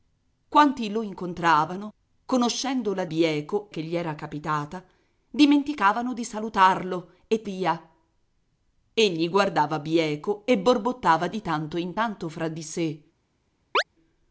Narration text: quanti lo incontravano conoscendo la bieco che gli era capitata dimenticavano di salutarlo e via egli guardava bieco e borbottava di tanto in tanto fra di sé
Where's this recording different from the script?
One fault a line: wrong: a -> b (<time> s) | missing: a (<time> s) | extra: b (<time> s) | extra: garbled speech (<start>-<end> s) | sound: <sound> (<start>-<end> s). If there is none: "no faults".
sound: chirp (13.7-13.8 s)